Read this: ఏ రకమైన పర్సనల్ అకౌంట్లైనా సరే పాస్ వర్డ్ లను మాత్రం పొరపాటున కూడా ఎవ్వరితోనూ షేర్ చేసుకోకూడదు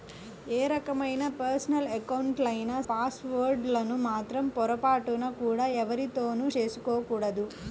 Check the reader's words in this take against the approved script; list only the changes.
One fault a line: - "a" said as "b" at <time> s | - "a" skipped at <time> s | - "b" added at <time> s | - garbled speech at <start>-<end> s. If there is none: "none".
- "సరే" skipped at 2.8 s
- "షేర్" skipped at 6.5 s